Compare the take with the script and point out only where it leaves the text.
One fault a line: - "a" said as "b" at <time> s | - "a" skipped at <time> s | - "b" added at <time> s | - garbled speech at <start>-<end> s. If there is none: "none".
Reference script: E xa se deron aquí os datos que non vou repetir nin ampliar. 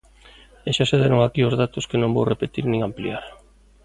none